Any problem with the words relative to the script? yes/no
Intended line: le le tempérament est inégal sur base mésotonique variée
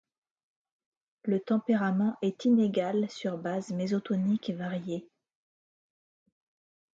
yes